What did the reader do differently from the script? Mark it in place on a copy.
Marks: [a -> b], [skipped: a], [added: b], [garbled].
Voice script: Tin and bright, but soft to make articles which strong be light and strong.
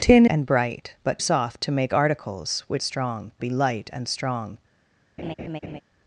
Tin and bright, but soft to make articles which strong be light and strong.